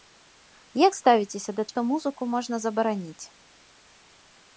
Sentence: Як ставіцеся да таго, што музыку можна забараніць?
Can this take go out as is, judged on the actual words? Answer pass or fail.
fail